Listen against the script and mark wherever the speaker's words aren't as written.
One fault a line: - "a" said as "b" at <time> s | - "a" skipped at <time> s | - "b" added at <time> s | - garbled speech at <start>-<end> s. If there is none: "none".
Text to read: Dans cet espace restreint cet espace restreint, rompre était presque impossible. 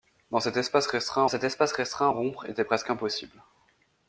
none